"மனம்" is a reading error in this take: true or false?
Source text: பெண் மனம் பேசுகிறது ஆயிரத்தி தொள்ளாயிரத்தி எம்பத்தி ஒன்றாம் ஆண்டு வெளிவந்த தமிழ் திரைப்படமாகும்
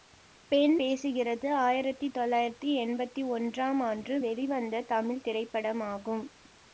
true